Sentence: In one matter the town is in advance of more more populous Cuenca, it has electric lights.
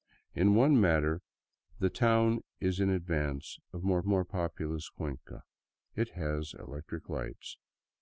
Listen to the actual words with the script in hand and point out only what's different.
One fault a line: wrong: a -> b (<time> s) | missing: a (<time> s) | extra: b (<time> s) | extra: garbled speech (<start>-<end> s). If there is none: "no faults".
no faults